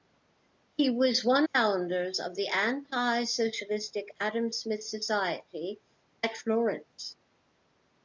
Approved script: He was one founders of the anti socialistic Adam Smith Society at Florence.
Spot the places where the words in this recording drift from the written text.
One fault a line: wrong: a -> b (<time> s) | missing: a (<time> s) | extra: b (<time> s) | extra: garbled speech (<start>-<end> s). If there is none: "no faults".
no faults